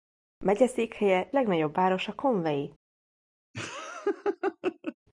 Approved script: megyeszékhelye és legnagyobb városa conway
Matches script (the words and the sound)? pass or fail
fail